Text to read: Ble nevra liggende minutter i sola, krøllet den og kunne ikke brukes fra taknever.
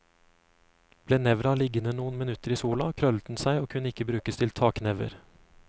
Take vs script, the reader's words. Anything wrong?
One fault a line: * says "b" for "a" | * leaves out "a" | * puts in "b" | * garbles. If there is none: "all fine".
* puts in "noen"
* puts in "seg"
* says "til" for "fra"